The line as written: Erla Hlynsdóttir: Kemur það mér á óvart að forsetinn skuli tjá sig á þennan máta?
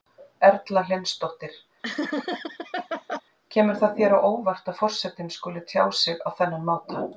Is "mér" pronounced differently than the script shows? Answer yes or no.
yes